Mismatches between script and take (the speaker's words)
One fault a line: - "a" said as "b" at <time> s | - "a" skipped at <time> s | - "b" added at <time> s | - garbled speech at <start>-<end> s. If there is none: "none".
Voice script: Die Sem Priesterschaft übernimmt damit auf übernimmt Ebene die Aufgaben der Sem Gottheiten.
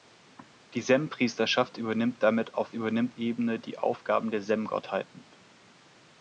none